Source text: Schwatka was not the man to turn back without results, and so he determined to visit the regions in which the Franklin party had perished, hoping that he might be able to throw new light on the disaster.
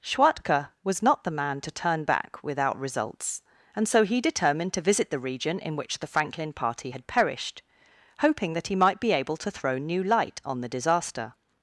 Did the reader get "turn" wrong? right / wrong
right